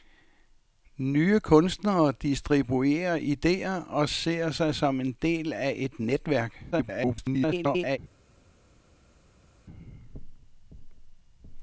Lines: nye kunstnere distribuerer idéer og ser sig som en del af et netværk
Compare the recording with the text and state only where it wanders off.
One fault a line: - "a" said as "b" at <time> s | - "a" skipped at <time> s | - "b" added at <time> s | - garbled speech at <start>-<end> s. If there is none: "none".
- garbled speech at 6.7-8.0 s